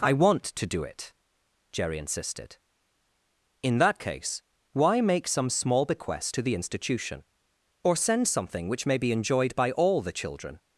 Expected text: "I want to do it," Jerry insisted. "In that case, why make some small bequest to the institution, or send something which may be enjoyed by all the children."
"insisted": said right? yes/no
yes